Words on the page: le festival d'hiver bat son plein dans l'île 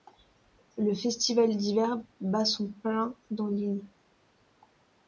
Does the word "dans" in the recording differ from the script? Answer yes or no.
no